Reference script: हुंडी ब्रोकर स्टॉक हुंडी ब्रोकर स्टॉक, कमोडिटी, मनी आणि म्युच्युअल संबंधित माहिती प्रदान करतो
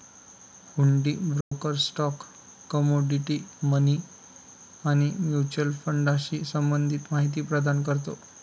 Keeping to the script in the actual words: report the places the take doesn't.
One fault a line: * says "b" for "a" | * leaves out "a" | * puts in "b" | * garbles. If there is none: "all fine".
* leaves out "हुंडी ब्रोकर स्टॉक"
* puts in "फंडाशी"